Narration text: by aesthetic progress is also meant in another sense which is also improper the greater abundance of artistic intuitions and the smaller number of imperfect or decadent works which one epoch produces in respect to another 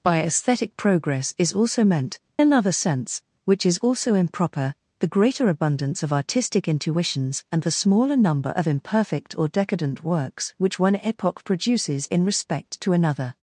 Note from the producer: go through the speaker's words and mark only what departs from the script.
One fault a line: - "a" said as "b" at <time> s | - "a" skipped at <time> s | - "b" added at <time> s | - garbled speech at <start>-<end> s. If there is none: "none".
- "in" skipped at 2.2 s